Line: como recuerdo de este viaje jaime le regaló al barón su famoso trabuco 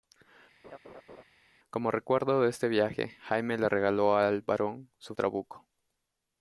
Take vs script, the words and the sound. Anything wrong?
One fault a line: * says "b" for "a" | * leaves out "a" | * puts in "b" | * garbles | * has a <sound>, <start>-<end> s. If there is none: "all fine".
* has a laugh, 0.6-1.2 s
* leaves out "famoso"